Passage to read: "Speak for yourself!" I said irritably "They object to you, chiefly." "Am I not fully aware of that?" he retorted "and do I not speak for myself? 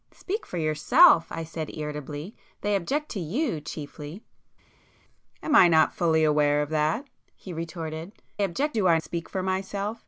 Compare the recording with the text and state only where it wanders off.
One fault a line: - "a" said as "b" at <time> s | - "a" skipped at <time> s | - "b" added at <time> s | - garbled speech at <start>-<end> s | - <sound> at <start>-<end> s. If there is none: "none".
- "and" said as "object" at 8.4 s
- "not" skipped at 9.0 s